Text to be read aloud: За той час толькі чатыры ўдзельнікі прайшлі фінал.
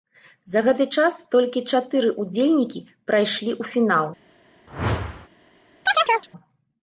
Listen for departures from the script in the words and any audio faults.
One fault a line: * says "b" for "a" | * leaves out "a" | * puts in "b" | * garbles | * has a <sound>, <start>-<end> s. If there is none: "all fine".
* says "гэты" for "той"
* puts in "ў"
* has a whoosh, 4.7-5.3 s
* has a chirp, 5.9-6.3 s